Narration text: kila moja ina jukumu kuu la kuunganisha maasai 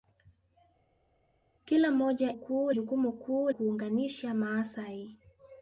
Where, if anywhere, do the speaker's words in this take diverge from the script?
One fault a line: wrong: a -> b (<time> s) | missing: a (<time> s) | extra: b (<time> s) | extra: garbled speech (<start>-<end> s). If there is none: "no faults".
wrong: ina -> kuu (2.3 s)
missing: la (3.5 s)